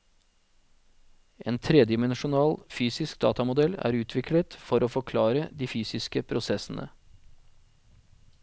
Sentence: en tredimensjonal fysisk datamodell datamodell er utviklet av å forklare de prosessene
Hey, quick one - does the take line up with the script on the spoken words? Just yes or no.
no